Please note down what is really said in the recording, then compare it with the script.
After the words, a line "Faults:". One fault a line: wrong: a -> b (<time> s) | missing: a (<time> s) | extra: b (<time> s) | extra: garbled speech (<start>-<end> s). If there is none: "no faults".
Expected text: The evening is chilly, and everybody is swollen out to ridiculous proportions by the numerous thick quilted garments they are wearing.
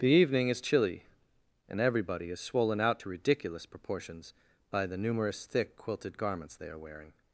The evening is chilly, and everybody is swollen out to ridiculous proportions by the numerous thick quilted garments they are wearing.
Faults:
no faults